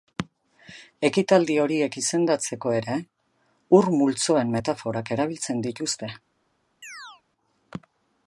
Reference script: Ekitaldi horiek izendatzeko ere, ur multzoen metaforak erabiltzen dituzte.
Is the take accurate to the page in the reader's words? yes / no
yes